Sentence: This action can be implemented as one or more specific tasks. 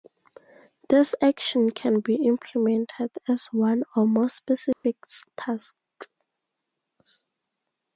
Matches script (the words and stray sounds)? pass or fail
fail